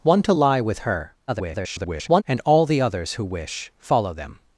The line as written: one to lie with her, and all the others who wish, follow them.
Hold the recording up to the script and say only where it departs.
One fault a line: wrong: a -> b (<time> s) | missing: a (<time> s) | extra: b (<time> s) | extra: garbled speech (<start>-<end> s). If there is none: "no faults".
extra: garbled speech (1.3-2.2 s)